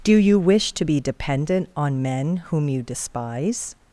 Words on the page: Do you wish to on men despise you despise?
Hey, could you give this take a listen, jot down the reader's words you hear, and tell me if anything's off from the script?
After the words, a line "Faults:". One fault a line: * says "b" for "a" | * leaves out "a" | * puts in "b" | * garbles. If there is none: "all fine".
Do you wish to be dependent on men whom you despise?
Faults:
* puts in "be dependent"
* says "whom" for "despise"